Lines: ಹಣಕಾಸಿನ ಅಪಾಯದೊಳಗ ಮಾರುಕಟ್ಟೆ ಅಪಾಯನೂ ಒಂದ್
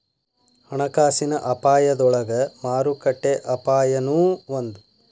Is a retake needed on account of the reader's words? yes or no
no